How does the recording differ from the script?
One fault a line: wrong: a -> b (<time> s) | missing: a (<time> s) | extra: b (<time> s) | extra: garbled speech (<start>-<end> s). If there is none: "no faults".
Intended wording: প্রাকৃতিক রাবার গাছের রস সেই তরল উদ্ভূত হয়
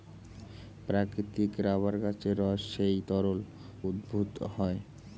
no faults